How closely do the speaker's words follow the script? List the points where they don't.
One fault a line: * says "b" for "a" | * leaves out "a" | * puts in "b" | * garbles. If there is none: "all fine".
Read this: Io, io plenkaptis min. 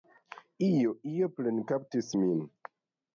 all fine